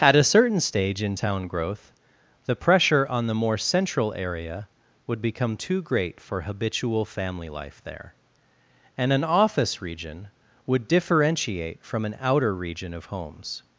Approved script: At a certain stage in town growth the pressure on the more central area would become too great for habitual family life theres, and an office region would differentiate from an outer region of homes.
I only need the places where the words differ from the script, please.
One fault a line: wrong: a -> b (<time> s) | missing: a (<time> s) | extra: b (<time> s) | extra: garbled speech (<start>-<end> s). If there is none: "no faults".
wrong: theres -> there (7.8 s)